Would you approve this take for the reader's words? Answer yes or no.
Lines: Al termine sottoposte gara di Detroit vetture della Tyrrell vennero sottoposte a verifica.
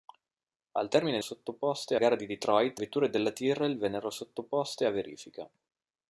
yes